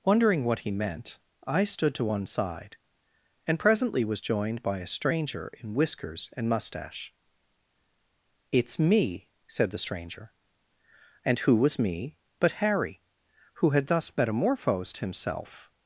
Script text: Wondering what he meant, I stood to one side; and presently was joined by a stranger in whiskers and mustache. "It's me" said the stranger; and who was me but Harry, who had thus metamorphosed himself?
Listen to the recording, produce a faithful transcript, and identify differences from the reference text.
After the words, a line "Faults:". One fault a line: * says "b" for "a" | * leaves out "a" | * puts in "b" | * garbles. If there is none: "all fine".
Wondering what he meant, I stood to one side; and presently was joined by a stranger in whiskers and mustache. "It's me" said the stranger; and who was me but Harry, who had thus metamorphosed himself?
Faults:
all fine